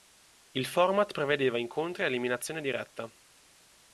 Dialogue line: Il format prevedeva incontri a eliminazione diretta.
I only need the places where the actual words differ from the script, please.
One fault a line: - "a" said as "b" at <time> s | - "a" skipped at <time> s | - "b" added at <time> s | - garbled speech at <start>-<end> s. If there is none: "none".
none